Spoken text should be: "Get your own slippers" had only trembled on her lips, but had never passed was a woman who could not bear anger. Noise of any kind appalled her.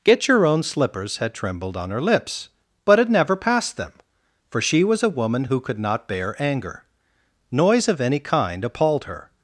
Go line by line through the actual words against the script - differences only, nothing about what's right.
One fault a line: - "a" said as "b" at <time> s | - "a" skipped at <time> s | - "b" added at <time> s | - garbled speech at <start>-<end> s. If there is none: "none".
- "only" skipped at 1.3 s
- "them for she" added at 3.8 s